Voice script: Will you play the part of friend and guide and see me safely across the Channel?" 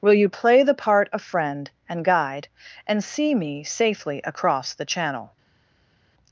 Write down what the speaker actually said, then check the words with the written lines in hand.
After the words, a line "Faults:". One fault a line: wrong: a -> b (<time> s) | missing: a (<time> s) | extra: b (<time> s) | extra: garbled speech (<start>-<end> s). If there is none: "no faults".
Will you play the part of friend and guide and see me safely across the Channel?"
Faults:
no faults